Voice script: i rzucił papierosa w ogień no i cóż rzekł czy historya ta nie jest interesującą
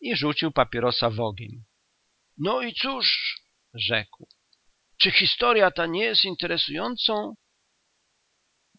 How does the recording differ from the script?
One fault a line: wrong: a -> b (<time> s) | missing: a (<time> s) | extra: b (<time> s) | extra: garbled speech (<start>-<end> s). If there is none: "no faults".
no faults